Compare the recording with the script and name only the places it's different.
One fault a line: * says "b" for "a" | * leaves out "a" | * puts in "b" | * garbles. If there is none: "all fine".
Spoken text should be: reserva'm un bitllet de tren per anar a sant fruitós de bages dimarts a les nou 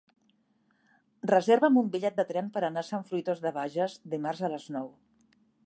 all fine